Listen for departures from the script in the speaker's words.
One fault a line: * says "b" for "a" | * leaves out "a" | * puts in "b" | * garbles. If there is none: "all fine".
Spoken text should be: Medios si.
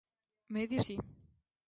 all fine